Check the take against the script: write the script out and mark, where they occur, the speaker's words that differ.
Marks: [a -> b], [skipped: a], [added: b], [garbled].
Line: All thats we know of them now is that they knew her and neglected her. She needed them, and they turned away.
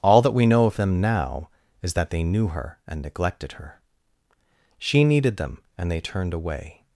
All [thats -> that] we know of them now is that they knew her and neglected her. She needed them, and they turned away.